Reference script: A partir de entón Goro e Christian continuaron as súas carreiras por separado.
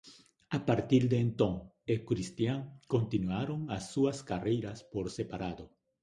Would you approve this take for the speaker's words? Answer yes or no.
no